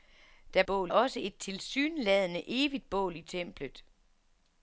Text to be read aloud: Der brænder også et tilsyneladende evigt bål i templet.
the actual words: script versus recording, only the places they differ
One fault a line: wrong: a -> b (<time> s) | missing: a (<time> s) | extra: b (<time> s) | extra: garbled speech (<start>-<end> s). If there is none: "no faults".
wrong: brænder -> bål (0.6 s)